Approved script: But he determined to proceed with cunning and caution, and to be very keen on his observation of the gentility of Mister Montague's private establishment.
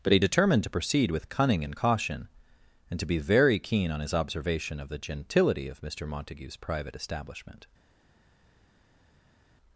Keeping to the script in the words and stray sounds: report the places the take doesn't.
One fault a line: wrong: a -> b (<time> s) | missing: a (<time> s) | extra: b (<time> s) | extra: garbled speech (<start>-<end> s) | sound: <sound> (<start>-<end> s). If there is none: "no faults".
no faults